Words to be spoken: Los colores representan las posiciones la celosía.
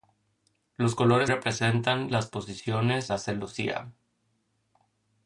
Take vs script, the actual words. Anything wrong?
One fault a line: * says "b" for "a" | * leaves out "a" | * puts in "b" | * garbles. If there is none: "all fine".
all fine